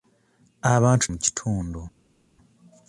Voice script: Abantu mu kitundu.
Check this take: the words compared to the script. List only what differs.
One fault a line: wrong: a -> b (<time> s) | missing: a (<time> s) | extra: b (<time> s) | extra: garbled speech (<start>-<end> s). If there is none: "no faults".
no faults